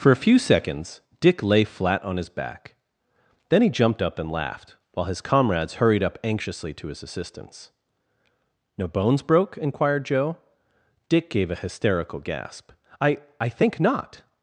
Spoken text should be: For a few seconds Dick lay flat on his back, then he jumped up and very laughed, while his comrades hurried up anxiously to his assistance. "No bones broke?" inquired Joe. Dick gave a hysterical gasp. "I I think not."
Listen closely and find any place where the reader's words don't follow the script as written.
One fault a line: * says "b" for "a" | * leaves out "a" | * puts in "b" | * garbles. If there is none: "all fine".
* leaves out "very"